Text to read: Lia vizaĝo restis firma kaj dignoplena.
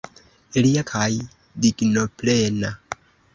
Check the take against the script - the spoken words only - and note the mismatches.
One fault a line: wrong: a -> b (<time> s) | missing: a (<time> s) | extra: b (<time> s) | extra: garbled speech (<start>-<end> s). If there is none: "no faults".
missing: vizaĝo restis firma (0.8 s)